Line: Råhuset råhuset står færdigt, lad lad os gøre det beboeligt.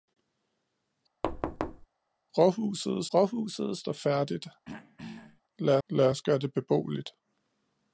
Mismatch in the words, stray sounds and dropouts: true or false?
true